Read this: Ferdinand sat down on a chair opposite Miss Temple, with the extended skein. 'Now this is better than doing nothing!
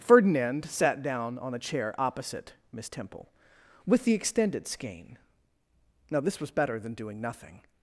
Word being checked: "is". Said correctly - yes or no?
no